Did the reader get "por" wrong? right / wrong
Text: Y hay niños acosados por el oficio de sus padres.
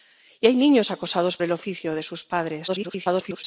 wrong